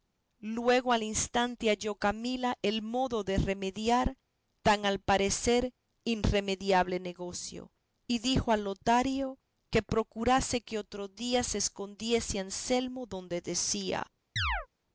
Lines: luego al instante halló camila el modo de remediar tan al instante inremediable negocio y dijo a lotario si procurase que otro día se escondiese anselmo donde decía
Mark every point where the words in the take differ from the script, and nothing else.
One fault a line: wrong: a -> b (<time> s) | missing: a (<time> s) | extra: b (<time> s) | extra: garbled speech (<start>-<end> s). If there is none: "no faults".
wrong: instante -> parecer (5.0 s)
wrong: si -> que (9.7 s)